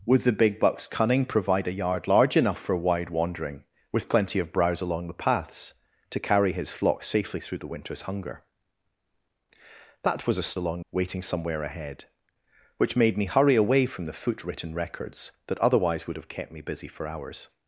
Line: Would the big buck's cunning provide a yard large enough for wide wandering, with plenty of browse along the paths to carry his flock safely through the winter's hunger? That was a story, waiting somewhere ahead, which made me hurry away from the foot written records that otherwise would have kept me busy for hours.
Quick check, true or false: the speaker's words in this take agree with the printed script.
false